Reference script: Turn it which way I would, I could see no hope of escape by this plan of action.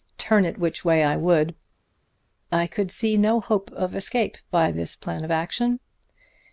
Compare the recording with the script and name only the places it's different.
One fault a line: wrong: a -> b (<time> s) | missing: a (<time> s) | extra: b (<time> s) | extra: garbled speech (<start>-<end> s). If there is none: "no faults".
no faults